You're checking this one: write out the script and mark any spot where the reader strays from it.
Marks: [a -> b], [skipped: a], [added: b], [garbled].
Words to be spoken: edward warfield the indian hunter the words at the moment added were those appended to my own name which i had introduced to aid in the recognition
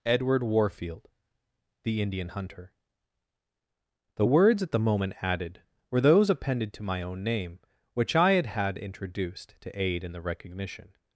edward warfield the indian hunter the words at the moment added were those appended to my own name which i had [added: had] introduced to aid in the recognition